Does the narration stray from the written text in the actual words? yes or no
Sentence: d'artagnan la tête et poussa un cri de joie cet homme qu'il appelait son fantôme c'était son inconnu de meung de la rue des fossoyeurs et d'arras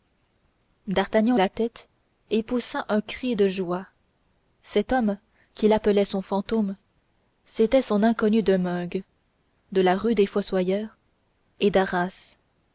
no